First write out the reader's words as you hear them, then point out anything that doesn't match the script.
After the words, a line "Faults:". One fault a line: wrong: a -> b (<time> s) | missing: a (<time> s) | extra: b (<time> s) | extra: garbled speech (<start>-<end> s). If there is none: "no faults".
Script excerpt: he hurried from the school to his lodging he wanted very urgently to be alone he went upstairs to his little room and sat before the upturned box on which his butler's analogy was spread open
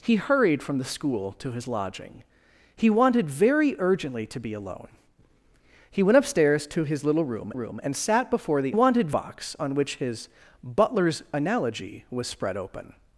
he hurried from the school to his lodging he wanted very urgently to be alone he went upstairs to his little room room and sat before the wanted box on which his butler's analogy was spread open
Faults:
extra: room (7.5 s)
wrong: upturned -> wanted (8.7 s)